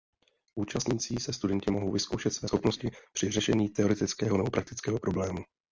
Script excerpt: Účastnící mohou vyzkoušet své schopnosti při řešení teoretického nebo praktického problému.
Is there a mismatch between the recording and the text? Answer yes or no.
yes